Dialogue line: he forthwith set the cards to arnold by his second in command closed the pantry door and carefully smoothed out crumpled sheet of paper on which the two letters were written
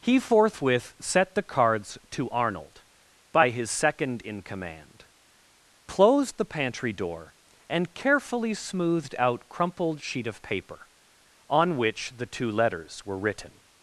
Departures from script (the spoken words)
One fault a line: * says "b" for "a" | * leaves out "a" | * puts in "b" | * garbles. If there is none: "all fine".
all fine